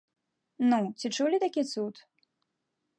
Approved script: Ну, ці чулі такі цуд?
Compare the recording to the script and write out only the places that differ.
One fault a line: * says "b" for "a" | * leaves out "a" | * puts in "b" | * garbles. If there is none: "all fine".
all fine